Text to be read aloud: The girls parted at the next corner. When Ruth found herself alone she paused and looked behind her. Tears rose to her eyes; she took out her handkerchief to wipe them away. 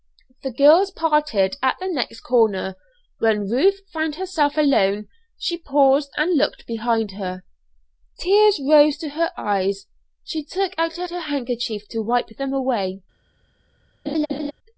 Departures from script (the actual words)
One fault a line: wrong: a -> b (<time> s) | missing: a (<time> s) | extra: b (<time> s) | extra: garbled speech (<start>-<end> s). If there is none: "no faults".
extra: her (11.1 s)